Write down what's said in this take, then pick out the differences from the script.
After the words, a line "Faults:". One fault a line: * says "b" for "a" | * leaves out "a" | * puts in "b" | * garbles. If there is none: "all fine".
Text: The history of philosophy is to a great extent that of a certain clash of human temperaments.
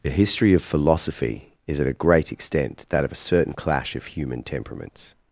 The history of philosophy is at a great extent that of a certain clash of human temperaments.
Faults:
* says "at" for "to"